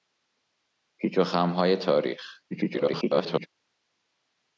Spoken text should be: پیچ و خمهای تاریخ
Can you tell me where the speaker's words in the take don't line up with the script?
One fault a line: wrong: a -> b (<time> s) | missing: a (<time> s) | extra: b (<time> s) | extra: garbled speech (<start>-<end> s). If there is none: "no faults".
extra: garbled speech (2.5-3.5 s)